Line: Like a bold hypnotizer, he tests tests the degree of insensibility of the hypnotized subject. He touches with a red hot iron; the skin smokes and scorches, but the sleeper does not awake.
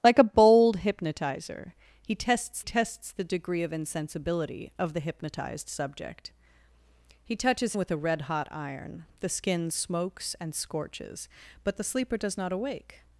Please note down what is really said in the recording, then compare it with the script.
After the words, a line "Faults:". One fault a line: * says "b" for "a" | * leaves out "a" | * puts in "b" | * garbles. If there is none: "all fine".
Like a bold hypnotizer, he tests tests the degree of insensibility of the hypnotized subject. He touches with a red hot iron; the skin smokes and scorches, but the sleeper does not awake.
Faults:
all fine